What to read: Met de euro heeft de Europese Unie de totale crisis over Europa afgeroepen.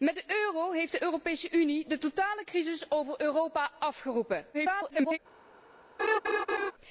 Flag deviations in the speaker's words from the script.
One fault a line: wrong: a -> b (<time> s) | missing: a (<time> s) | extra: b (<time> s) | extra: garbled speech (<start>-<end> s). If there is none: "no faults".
extra: garbled speech (4.5-5.2 s)